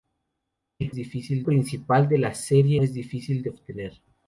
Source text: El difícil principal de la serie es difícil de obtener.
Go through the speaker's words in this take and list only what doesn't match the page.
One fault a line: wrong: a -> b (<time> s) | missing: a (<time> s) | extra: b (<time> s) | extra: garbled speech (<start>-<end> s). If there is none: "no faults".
no faults